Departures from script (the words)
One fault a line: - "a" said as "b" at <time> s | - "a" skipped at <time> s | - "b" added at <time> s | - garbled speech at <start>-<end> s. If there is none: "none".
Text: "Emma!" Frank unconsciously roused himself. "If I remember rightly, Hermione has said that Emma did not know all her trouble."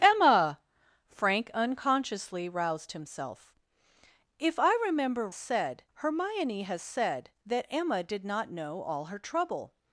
- "rightly" said as "said" at 5.3 s